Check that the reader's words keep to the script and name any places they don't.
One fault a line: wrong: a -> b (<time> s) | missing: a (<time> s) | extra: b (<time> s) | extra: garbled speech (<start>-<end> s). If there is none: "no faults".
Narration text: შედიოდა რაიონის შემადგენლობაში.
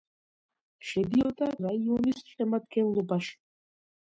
no faults